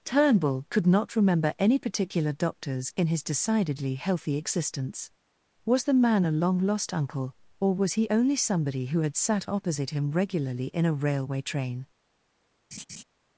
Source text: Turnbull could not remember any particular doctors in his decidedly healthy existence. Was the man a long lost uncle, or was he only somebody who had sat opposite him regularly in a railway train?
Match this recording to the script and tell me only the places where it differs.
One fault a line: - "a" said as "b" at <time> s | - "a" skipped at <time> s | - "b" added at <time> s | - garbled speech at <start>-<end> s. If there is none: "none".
none